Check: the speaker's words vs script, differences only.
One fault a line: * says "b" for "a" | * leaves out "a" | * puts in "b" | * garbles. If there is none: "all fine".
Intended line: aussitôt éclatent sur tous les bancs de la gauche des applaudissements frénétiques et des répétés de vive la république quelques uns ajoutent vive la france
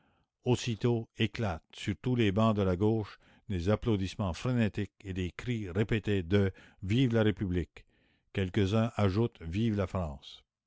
* puts in "cris"